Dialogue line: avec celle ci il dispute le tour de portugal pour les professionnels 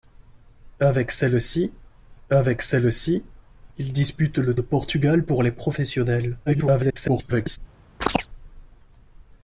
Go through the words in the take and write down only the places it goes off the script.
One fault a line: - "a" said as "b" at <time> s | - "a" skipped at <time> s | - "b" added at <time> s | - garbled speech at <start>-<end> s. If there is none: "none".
- "avec celle ci" added at 2.3 s
- "tour" skipped at 4.6 s
- garbled speech at 6.5-7.6 s